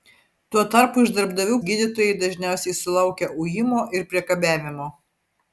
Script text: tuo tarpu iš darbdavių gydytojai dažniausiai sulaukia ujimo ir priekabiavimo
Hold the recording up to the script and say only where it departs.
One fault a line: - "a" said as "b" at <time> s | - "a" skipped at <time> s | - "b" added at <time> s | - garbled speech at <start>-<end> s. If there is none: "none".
none